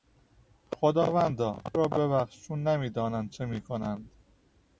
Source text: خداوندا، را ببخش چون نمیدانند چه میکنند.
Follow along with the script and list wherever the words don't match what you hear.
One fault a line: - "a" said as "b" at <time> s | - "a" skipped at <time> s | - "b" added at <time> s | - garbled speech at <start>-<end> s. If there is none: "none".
none